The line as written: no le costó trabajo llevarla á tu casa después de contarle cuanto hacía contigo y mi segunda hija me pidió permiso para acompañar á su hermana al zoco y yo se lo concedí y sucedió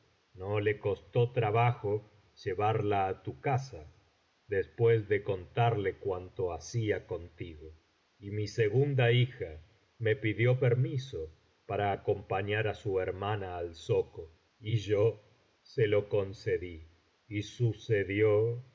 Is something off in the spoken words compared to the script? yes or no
no